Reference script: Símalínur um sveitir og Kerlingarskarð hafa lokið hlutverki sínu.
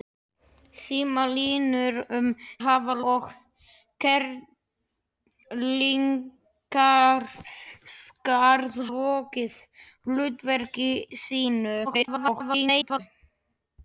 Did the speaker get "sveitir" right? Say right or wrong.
wrong